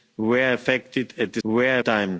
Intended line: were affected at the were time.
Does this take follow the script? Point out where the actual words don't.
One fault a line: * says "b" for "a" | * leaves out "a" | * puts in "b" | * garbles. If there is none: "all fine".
all fine